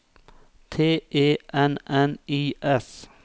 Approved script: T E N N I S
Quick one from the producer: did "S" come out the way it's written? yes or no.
yes